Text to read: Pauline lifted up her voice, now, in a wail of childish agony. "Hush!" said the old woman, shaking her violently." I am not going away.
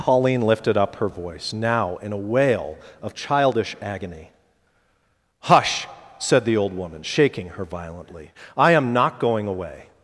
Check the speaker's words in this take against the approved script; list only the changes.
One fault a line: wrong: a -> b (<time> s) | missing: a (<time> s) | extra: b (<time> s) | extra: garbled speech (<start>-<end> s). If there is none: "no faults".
no faults